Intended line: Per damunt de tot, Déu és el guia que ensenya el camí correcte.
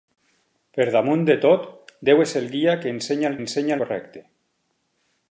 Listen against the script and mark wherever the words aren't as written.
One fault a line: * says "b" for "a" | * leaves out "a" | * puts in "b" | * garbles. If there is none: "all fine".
* says "ensenya" for "camí"